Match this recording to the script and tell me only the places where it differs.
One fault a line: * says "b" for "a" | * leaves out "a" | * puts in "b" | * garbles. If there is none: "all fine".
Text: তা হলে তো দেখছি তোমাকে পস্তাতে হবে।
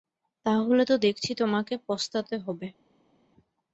all fine